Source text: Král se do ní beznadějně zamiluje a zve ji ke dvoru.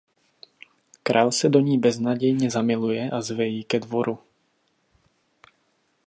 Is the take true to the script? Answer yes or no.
yes